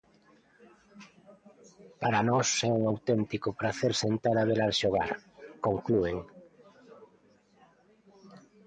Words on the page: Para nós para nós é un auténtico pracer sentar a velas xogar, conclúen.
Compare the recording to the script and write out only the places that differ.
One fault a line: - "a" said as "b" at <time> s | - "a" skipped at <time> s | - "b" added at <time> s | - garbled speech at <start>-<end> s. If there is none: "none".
- "para nós" skipped at 2.5 s